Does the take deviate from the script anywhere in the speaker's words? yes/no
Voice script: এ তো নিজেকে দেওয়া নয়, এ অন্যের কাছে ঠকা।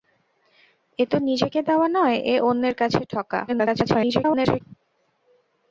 yes